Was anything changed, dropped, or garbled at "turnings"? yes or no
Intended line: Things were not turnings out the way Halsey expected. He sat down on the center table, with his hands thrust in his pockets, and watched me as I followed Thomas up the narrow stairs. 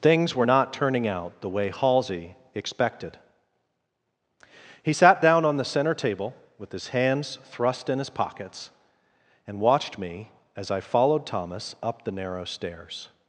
yes